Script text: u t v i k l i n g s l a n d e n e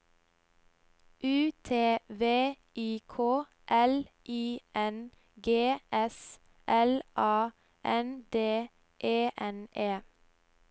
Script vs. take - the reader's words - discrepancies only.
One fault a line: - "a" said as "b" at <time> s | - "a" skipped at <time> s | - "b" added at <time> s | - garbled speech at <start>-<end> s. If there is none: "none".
none